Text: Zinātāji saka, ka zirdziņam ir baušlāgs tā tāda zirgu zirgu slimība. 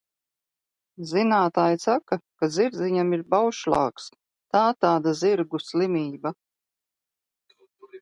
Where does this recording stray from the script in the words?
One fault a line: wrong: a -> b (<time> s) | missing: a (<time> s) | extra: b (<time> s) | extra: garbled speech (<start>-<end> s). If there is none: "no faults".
missing: zirgu (5.6 s)